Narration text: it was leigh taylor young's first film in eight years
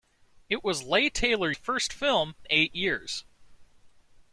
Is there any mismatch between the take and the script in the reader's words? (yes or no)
yes